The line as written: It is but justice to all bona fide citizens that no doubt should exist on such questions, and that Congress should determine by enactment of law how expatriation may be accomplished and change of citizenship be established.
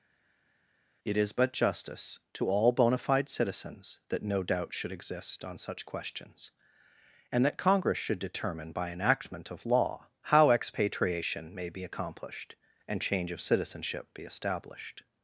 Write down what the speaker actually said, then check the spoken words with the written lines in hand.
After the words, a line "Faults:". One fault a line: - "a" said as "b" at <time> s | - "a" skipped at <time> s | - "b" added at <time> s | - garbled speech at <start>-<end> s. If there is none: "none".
It is but justice to all bona fide citizens that no doubt should exist on such questions, and that Congress should determine by enactment of law how expatriation may be accomplished and change of citizenship be established.
Faults:
none